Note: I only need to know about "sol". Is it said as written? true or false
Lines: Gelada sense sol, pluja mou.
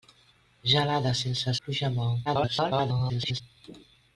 false